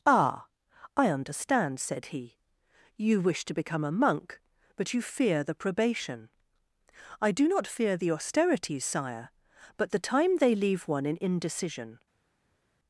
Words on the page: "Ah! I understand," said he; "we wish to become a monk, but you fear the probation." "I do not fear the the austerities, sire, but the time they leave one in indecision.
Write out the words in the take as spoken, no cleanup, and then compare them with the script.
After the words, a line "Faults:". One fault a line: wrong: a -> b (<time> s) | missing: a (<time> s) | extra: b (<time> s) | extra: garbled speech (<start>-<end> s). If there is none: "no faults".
"Ah! I understand," said he; "you wish to become a monk, but you fear the probation." "I do not fear the austerities, sire, but the time they leave one in indecision.
Faults:
wrong: we -> you (3.0 s)
missing: the (8.1 s)